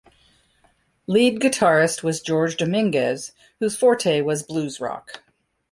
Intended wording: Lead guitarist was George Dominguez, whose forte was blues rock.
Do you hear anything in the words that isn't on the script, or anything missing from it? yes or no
no